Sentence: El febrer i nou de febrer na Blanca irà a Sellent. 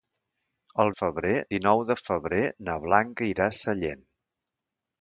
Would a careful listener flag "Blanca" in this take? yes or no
no